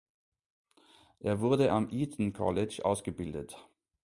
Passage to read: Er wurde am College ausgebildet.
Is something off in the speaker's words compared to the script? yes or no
yes